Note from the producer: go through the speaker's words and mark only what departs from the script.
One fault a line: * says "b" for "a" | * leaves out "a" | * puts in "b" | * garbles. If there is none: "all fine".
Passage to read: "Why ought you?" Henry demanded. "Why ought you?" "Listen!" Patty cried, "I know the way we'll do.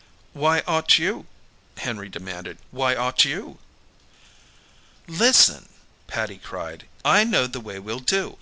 all fine